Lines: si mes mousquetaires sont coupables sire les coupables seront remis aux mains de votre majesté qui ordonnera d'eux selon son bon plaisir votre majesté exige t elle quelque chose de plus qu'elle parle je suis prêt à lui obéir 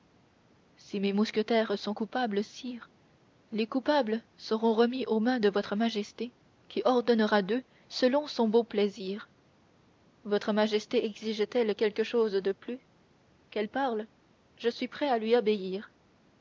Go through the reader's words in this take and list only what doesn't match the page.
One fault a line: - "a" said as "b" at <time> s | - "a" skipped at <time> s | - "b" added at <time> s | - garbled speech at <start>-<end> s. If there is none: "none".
none